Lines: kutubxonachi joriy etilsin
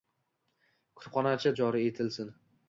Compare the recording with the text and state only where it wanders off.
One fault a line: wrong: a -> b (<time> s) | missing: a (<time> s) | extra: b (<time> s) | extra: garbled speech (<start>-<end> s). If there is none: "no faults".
no faults